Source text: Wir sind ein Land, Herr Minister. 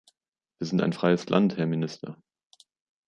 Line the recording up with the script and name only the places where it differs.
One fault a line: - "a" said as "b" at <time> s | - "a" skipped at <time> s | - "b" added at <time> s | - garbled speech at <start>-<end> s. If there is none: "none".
- "freies" added at 0.9 s